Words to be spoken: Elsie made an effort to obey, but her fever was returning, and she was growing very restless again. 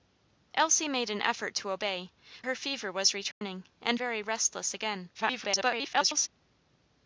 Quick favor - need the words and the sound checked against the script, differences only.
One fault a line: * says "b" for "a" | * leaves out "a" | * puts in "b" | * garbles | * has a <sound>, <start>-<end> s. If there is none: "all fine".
* leaves out "but"
* has a dropout, 3.3-3.4 s
* leaves out "she was growing"
* garbles